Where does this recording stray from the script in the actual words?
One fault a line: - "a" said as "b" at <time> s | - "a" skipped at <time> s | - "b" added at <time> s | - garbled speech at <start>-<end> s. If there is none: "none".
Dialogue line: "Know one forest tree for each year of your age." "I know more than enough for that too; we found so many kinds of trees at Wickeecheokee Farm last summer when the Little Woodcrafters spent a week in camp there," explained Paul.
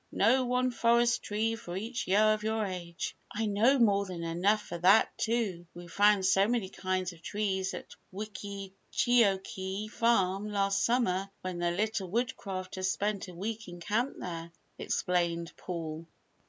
none